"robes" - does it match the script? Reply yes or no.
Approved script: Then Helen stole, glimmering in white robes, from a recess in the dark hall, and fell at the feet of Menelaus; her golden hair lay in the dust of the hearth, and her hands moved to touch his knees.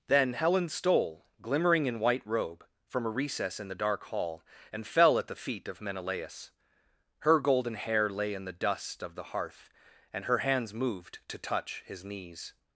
no